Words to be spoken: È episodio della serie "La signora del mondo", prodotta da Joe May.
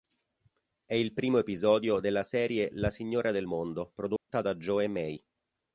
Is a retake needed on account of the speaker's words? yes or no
yes